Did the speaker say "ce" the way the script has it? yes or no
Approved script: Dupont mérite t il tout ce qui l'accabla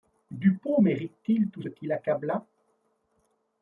no